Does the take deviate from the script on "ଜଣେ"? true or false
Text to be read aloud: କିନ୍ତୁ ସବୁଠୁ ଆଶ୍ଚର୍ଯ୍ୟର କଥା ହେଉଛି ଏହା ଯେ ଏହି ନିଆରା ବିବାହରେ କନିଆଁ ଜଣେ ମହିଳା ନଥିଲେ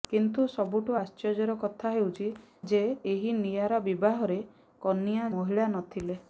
true